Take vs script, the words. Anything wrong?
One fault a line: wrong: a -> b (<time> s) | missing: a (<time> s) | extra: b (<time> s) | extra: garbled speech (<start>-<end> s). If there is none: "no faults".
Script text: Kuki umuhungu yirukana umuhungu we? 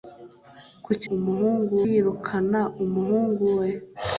no faults